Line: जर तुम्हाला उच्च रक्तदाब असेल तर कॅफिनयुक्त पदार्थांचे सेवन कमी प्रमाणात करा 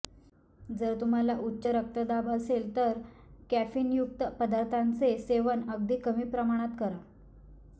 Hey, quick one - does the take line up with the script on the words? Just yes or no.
no